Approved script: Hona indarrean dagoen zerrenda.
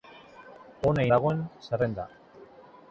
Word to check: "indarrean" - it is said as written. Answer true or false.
false